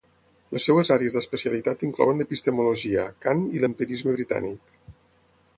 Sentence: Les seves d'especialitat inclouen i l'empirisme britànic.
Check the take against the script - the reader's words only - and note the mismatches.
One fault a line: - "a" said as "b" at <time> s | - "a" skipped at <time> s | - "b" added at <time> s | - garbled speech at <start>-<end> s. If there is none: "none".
- "àrees" added at 0.9 s
- "l'epistemologia Kant" added at 2.2 s